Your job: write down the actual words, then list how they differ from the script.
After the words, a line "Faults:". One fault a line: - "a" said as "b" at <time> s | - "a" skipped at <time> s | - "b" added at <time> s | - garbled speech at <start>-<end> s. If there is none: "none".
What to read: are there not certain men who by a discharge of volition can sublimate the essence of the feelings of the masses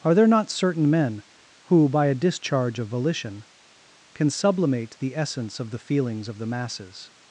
are there not certain men who by a discharge of volition can sublimate the essence of the feelings of the masses
Faults:
none